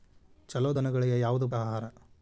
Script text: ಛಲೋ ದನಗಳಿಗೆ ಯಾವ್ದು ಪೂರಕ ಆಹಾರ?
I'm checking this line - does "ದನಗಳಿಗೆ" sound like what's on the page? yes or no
yes